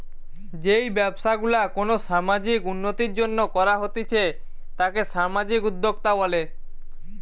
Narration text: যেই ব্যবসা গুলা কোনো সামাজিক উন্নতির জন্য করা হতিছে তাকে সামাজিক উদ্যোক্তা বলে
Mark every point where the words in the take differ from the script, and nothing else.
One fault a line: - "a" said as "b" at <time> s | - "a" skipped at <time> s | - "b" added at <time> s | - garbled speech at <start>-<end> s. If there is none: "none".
none